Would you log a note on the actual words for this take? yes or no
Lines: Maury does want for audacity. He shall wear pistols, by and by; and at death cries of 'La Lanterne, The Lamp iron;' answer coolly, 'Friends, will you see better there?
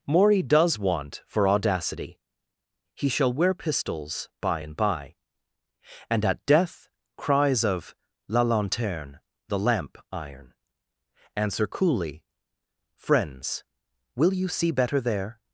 no